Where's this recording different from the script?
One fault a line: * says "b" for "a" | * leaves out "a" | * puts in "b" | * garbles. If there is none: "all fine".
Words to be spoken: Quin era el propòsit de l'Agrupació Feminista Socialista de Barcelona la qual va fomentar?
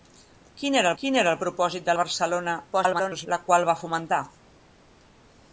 * puts in "quin era"
* leaves out "l'Agrupació Feminista Socialista"
* garbles